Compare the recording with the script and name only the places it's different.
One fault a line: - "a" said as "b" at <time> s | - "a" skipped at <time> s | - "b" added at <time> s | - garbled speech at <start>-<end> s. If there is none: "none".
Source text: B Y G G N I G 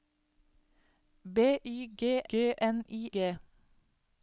none